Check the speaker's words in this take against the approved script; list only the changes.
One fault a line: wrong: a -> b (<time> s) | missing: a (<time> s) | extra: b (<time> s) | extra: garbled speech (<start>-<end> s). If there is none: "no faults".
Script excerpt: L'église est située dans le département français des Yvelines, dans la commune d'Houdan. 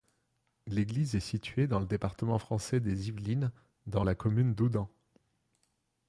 no faults